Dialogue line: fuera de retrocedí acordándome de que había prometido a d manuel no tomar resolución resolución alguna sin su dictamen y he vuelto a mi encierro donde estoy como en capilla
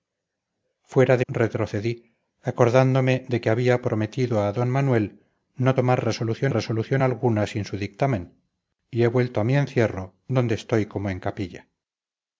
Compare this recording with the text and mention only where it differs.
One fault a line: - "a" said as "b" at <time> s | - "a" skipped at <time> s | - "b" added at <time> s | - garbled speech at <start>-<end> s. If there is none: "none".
none